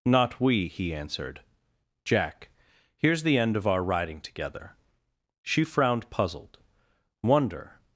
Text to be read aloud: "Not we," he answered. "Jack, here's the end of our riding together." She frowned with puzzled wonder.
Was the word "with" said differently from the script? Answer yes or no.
yes